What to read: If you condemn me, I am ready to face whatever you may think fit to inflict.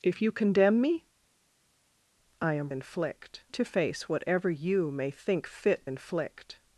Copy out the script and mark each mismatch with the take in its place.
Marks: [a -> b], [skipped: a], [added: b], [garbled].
If you condemn me, I am [ready -> inflict] to face whatever you may think fit [skipped: to] inflict.